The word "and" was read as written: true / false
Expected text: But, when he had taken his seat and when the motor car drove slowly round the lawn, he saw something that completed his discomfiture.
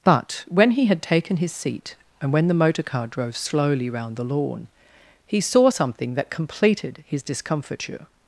true